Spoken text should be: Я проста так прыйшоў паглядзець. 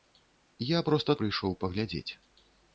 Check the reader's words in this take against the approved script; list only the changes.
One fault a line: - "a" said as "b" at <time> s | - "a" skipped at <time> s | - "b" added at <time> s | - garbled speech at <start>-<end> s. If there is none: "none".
- "так" skipped at 1.2 s